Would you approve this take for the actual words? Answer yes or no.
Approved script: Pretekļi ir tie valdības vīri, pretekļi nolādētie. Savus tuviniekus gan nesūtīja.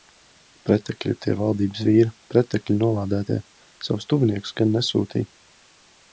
yes